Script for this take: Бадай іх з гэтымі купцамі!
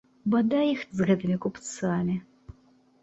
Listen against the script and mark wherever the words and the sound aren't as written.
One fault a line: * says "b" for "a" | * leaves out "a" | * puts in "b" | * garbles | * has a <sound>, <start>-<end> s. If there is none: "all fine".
all fine